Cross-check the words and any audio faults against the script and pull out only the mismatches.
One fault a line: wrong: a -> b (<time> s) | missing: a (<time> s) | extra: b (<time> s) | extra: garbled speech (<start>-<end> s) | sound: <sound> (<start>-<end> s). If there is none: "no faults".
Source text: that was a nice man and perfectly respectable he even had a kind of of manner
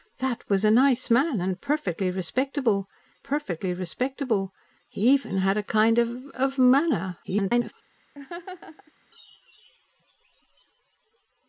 extra: perfectly respectable (3.2 s)
extra: garbled speech (7.2-7.7 s)
sound: laugh (8.1-8.9 s)